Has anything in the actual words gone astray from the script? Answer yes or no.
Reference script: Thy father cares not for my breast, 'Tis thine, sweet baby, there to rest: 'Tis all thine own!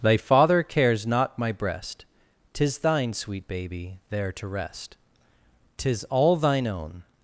yes